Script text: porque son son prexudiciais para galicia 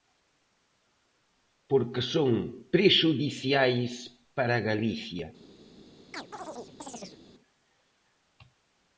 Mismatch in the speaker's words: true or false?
true